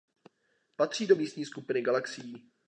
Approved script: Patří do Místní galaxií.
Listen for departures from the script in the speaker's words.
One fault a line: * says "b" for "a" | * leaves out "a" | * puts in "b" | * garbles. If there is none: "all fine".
* puts in "skupiny"